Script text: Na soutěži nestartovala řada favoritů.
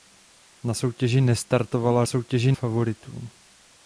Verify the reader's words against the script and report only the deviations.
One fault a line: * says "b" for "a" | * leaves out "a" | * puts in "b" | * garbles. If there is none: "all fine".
* says "soutěži" for "řada"